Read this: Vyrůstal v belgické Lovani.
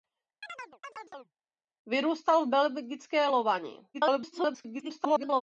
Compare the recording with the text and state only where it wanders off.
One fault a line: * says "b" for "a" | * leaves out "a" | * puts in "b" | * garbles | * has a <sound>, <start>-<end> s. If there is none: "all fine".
* has a chirp, 0.4-1.3 s
* garbles